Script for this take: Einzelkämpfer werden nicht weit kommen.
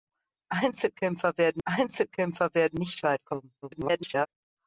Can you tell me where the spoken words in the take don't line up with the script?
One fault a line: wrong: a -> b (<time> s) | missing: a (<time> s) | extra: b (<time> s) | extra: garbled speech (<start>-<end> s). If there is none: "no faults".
extra: einzelkämpfer werden (1.6 s)
extra: garbled speech (3.6-4.3 s)